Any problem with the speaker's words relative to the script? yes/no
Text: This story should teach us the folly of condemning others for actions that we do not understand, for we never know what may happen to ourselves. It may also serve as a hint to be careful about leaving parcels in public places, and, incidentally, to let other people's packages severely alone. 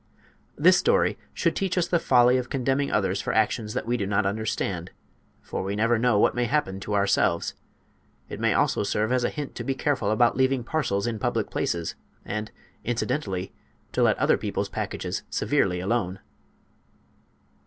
no